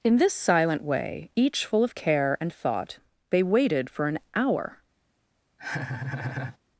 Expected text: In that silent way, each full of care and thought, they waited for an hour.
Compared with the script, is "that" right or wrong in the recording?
wrong